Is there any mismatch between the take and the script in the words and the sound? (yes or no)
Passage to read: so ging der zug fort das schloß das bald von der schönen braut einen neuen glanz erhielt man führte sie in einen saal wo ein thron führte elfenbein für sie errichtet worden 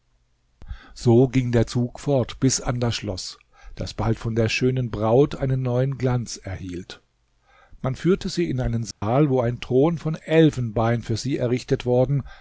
yes